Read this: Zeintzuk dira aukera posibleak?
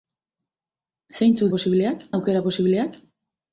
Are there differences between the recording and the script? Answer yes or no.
yes